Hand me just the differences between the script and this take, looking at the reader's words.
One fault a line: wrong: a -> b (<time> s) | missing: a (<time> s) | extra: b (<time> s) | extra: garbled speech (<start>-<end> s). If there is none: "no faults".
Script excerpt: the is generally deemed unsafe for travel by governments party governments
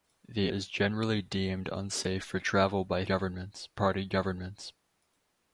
no faults